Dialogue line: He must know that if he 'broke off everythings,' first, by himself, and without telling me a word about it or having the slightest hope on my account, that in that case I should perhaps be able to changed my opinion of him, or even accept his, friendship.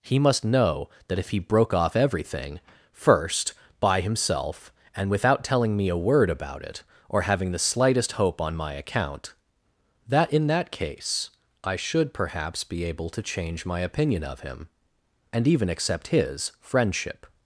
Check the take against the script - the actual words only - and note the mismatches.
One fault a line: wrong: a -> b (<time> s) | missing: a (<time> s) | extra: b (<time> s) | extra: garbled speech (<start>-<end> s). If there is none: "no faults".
wrong: everythings -> everything (1.9 s)
wrong: changed -> change (13.2 s)
wrong: or -> and (15.3 s)